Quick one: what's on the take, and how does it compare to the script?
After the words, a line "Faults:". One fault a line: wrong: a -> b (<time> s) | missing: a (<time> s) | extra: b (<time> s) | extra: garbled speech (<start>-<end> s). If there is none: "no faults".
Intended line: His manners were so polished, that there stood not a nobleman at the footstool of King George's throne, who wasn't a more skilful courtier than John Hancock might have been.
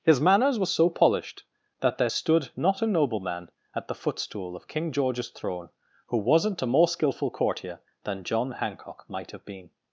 His manners were so polished, that there stood not a nobleman at the footstool of King George's throne, who wasn't a more skilful courtier than John Hancock might have been.
Faults:
no faults